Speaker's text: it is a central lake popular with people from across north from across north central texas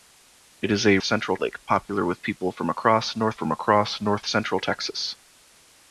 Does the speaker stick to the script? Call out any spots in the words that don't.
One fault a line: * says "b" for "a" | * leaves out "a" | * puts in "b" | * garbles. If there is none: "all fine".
all fine